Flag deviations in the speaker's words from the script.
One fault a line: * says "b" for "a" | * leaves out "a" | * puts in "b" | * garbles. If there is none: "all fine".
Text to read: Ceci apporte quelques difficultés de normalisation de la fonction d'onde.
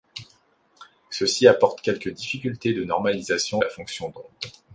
* leaves out "de"